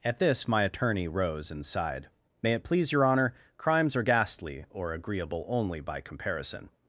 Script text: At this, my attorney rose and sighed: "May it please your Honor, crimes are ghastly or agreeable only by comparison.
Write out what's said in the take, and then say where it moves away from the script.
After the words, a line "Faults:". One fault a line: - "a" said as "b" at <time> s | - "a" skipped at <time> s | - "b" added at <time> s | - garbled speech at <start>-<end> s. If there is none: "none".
At this, my attorney rose and sighed: "May it please your Honor, crimes are ghastly or agreeable only by comparison.
Faults:
none